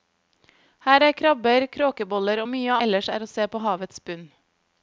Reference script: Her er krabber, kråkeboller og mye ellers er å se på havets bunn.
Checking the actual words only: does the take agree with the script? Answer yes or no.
yes